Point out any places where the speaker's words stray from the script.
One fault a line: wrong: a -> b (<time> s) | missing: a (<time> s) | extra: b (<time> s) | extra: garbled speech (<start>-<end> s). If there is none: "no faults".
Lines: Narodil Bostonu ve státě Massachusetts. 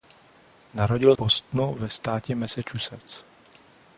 no faults